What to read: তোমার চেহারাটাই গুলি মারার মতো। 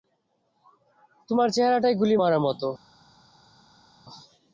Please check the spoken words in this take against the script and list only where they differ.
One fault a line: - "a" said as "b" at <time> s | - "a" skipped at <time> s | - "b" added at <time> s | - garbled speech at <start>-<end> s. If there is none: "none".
none